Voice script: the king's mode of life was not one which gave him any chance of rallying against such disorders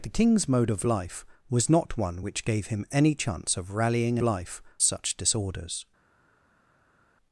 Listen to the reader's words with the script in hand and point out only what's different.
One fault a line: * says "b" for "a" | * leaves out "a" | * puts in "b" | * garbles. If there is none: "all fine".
* says "life" for "against"